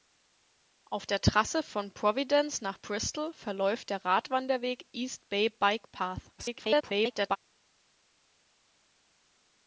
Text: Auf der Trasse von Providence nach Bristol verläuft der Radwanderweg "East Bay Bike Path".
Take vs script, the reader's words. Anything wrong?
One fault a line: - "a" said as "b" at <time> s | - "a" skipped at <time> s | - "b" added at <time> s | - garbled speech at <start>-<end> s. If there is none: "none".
- garbled speech at 6.4-7.4 s